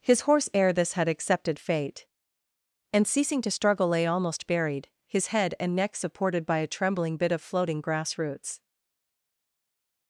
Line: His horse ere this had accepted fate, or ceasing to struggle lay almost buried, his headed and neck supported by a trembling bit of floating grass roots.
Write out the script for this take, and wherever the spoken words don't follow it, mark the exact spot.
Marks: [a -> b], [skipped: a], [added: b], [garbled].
His horse ere this had accepted fate, [or -> and] ceasing to struggle lay almost buried, his [headed -> head] and neck supported by a trembling bit of floating grass roots.